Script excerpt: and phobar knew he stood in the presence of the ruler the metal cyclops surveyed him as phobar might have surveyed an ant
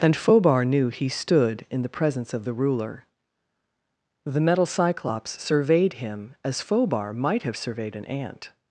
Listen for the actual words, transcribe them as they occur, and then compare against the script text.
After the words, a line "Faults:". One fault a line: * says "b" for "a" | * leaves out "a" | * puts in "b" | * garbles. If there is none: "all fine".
and phobar knew he stood in the presence of the ruler the metal cyclops surveyed him as phobar might have surveyed an ant
Faults:
all fine